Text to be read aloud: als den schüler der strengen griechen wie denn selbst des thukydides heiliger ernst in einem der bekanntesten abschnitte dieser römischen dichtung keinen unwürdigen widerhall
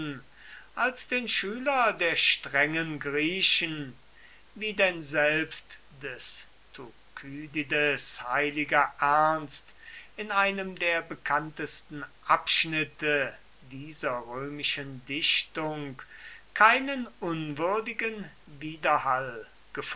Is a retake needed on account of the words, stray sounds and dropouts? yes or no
no